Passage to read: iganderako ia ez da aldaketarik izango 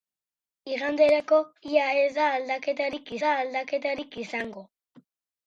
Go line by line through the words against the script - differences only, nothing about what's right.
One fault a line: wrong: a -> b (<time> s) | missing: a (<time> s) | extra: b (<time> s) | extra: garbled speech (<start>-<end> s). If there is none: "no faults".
extra: da aldaketarik (3.2 s)